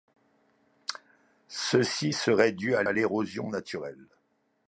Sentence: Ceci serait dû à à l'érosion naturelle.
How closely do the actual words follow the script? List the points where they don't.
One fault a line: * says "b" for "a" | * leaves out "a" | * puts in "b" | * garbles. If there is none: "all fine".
all fine